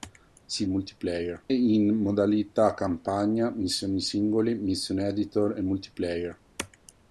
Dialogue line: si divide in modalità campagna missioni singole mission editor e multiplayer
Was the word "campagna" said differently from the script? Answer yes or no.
no